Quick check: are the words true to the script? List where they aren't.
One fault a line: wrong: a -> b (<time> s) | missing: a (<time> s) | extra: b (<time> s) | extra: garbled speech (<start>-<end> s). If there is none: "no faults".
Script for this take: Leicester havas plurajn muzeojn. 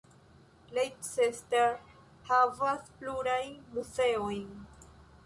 no faults